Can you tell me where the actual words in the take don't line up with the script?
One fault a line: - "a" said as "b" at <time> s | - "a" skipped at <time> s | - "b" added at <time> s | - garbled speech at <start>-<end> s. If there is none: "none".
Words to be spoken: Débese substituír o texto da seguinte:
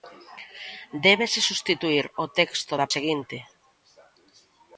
none